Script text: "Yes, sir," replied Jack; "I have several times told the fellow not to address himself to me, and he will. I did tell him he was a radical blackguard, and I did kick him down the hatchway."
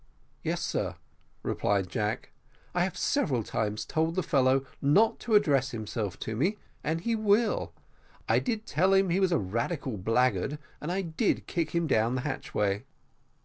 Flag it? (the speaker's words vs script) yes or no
no